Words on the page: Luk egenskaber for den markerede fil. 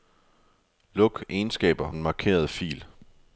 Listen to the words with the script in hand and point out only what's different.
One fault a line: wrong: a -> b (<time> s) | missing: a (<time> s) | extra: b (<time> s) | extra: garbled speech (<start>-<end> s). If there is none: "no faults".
missing: for (1.9 s)